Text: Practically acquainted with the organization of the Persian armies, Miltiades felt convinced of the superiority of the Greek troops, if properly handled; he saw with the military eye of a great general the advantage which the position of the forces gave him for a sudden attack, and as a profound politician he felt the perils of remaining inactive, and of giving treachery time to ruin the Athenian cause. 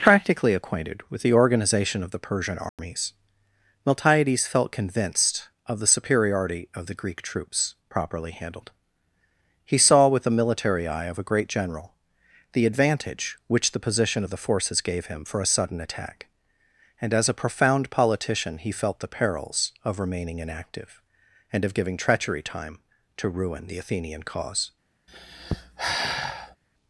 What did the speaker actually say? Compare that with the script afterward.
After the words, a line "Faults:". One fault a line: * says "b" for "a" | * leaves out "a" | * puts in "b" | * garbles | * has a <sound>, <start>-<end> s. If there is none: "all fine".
Practically acquainted with the organization of the Persian armies, Miltiades felt convinced of the superiority of the Greek troops, properly handled; he saw with the military eye of a great general the advantage which the position of the forces gave him for a sudden attack, and as a profound politician he felt the perils of remaining inactive, and of giving treachery time to ruin the Athenian cause.
Faults:
* has a dropout, 2.7-2.8 s
* leaves out "if"
* has a sigh, 25.1-26.6 s